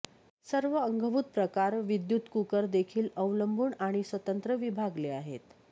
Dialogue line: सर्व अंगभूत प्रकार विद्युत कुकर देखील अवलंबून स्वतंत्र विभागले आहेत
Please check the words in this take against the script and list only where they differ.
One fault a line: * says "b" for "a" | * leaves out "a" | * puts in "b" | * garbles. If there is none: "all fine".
* puts in "आणि"